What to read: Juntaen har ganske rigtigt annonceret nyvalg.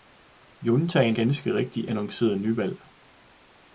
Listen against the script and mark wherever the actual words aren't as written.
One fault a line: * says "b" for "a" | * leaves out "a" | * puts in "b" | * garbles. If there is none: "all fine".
* leaves out "har"